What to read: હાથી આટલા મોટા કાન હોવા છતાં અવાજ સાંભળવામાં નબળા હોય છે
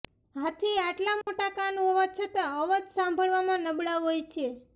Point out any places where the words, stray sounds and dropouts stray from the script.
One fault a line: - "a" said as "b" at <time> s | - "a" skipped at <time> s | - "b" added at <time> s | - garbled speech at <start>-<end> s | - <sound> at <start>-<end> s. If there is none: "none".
- dropout at 1.2-1.3 s